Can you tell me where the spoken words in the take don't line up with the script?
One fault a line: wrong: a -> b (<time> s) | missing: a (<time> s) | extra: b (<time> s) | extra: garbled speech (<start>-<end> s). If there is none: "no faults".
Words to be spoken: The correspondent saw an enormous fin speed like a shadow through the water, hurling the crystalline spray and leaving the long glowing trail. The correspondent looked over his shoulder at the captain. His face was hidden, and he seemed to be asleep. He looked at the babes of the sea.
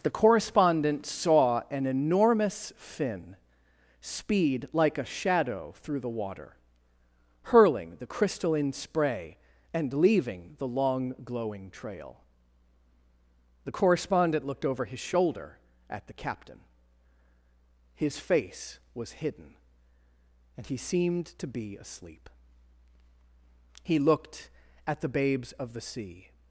no faults